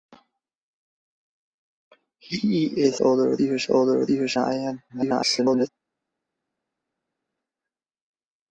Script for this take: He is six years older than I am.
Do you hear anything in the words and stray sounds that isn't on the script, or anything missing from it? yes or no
yes